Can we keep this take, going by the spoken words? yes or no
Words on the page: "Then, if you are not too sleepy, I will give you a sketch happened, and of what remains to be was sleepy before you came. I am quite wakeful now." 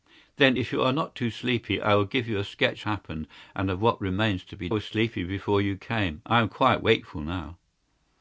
yes